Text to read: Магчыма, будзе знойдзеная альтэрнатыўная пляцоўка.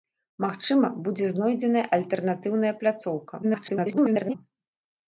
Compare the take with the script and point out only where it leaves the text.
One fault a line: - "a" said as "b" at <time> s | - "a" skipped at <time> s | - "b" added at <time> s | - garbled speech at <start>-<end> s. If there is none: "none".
- garbled speech at 3.4-4.3 s